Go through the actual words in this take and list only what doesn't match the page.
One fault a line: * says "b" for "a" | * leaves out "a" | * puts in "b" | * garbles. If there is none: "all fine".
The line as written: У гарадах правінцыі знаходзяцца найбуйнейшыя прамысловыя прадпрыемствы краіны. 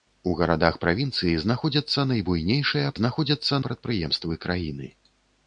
* says "знаходзяцца" for "прамысловыя"